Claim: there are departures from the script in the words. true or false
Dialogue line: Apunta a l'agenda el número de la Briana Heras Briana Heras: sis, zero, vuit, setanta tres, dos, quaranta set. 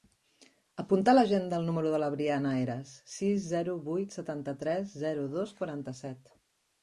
true